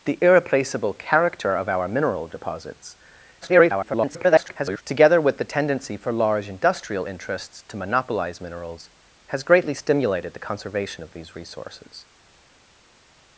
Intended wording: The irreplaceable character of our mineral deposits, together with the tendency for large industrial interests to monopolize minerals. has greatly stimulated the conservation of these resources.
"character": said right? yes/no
yes